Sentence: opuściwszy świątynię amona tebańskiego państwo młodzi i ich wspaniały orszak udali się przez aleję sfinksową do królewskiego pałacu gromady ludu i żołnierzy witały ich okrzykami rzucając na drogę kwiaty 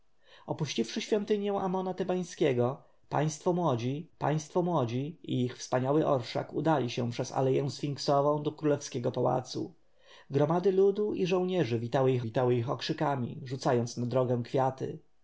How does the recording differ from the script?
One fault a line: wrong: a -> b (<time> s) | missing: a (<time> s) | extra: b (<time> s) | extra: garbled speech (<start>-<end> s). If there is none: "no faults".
extra: państwo młodzi (4.2 s)
extra: witały ich (12.2 s)